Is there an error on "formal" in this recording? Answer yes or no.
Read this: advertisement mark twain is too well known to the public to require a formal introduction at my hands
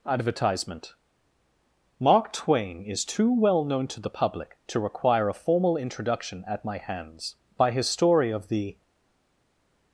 no